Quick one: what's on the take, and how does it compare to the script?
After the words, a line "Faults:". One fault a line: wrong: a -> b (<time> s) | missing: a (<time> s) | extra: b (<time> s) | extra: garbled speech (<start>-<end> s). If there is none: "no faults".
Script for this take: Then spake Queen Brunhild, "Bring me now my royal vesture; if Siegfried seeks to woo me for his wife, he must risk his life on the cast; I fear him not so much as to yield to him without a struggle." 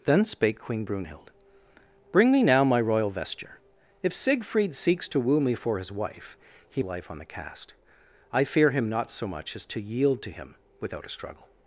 Then spake Queen Brunhild, "Bring me now my royal vesture; if Siegfried seeks to woo me for his wife, he life on the cast; I fear him not so much as to yield to him without a struggle."
Faults:
missing: must risk his (6.8 s)